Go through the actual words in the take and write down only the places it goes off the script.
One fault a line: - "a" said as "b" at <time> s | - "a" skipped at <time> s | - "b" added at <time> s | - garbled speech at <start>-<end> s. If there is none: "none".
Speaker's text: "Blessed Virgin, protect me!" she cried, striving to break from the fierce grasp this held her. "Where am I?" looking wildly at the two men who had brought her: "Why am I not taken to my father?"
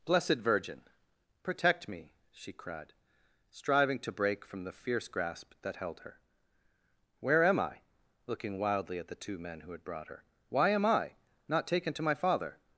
- "this" said as "that" at 5.6 s